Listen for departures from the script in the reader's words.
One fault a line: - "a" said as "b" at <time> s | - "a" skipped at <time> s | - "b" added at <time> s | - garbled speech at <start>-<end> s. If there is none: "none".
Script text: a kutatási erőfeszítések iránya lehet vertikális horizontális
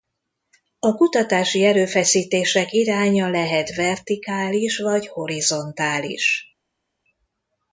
- "vagy" added at 4.8 s